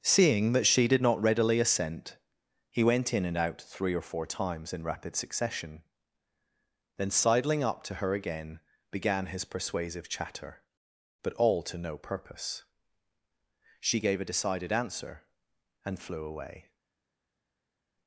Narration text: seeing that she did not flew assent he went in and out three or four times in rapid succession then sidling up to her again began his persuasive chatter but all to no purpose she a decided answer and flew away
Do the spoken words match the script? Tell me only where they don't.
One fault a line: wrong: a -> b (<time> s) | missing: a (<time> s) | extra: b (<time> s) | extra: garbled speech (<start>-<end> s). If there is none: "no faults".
wrong: flew -> readily (1.2 s)
extra: gave (14.0 s)